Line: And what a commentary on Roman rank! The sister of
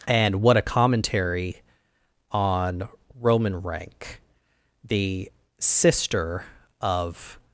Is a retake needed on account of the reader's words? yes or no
no